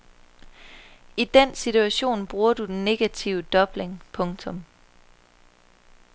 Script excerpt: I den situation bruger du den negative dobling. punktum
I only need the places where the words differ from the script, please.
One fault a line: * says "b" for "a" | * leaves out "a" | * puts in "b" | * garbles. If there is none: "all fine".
all fine